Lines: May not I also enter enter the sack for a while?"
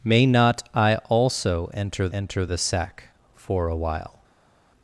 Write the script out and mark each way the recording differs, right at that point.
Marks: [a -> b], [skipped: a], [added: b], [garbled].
May not I also enter enter the sack for a while?"